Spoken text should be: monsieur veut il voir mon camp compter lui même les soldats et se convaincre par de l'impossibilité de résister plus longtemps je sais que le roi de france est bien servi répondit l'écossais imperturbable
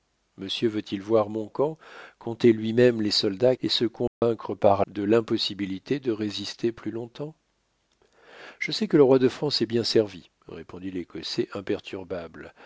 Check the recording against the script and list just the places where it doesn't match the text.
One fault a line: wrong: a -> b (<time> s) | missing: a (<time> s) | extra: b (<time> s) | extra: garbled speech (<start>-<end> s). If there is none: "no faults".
no faults